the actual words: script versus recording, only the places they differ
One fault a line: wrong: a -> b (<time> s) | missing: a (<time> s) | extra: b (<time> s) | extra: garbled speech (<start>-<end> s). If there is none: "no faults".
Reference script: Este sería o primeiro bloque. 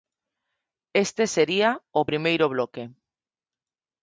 no faults